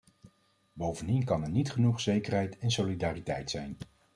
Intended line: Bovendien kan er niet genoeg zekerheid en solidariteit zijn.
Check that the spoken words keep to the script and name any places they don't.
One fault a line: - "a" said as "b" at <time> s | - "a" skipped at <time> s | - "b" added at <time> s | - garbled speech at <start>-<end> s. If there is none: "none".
none